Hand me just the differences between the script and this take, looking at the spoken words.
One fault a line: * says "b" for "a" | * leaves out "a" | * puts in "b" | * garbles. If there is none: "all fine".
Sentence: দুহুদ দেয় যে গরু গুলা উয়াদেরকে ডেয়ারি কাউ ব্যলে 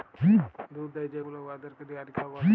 * leaves out "গরু"